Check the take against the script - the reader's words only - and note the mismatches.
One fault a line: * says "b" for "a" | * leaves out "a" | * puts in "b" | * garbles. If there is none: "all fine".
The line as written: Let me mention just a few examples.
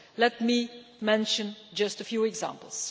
all fine